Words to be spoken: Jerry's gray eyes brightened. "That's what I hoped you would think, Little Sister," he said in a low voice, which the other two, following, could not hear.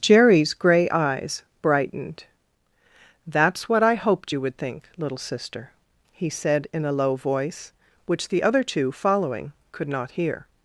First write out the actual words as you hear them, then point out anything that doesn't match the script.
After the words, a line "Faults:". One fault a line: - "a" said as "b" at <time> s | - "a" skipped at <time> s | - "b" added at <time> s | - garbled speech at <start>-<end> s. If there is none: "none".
Jerry's gray eyes brightened. "That's what I hoped you would think, Little Sister," he said in a low voice, which the other two, following, could not hear.
Faults:
none